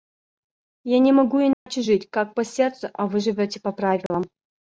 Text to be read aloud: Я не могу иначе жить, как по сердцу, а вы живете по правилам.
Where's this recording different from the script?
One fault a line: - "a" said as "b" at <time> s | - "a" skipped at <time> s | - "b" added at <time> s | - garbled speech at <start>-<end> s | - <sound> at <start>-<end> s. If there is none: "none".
- dropout at 1.5-1.7 s
- dropout at 4.1-4.1 s